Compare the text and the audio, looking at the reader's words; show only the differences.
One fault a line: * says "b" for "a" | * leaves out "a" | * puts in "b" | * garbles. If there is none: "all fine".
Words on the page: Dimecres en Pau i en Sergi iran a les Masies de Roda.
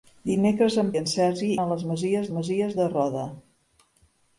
* leaves out "Pau"
* leaves out "iran"
* puts in "Masies"